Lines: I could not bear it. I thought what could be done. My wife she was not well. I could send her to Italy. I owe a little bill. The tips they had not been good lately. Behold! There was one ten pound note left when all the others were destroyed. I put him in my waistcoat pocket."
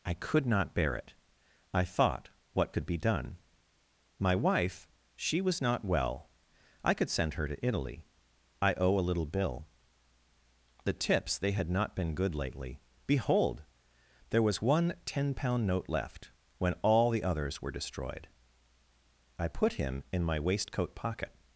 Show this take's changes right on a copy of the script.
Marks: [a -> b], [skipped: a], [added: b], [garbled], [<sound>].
I could not bear it. I thought what could be done. My wife she was not well. I could send her to Italy. I owe a little bill. The tips they had not been good lately. Behold! There was one ten pound note left when all the others were destroyed. I put him in my waistcoat pocket."